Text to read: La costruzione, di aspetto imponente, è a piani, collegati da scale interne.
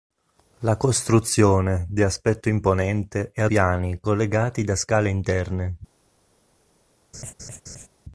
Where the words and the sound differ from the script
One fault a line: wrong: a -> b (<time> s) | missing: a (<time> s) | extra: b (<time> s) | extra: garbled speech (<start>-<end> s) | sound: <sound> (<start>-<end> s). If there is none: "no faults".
sound: laugh (7.1-7.9 s)